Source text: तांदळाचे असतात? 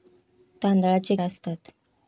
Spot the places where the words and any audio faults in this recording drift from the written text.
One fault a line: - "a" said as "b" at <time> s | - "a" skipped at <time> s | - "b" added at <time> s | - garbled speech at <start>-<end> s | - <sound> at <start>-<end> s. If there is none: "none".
none